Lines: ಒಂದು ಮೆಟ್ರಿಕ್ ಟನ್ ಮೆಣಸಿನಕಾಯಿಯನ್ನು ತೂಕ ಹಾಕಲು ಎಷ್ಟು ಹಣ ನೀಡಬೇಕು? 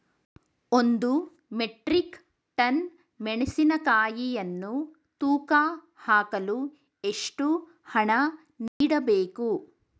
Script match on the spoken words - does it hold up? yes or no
yes